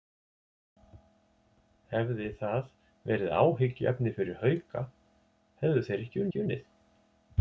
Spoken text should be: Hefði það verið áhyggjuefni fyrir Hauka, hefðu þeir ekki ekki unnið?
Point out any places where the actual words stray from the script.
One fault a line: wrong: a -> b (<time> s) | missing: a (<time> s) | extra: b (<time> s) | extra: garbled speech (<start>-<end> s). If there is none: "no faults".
no faults